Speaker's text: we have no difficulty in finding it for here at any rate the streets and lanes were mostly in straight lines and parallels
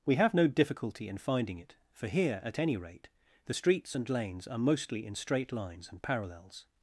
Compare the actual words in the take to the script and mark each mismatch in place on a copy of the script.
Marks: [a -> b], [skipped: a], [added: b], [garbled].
we have no difficulty in finding it for here at any rate the streets and lanes [were -> are] mostly in straight lines and parallels